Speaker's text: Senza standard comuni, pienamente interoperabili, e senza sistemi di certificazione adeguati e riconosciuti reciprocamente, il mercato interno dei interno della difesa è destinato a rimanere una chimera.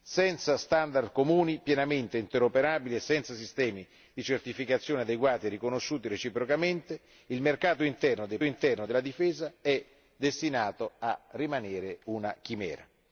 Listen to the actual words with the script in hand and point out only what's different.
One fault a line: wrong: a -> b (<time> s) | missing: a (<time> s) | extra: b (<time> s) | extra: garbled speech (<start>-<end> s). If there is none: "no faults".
no faults